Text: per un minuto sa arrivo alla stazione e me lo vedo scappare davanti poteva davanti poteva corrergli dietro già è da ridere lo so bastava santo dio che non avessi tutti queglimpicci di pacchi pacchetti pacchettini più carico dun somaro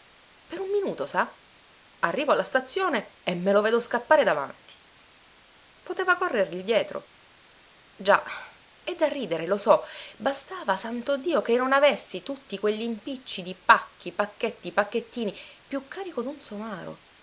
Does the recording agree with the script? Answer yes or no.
no